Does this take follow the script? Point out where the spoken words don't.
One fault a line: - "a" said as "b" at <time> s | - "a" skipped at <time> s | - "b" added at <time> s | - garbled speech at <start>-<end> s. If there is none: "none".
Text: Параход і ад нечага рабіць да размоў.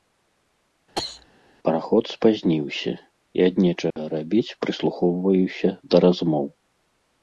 - "спазніўся" added at 2.1 s
- "прыслухоўваюся" added at 4.6 s